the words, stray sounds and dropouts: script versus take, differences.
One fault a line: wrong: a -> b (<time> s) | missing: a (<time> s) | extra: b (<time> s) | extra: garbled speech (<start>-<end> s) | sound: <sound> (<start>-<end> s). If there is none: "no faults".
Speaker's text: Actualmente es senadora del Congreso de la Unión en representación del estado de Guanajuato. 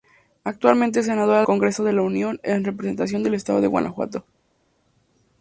missing: del (1.4 s)